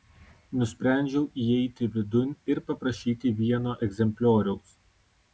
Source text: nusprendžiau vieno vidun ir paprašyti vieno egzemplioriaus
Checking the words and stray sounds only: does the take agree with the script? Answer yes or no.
no